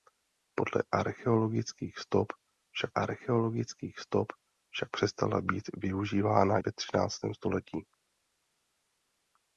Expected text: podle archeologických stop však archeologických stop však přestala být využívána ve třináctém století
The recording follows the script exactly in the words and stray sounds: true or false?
true